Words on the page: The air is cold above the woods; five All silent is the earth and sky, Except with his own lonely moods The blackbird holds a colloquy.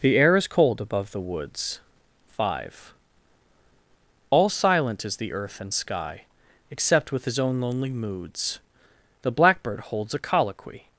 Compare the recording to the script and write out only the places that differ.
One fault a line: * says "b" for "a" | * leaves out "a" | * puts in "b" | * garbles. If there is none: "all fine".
all fine